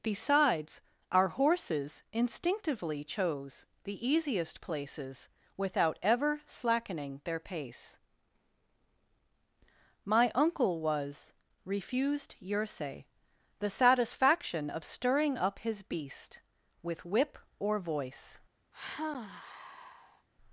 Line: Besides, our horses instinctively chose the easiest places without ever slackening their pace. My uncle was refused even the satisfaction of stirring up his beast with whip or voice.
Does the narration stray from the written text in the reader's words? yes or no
yes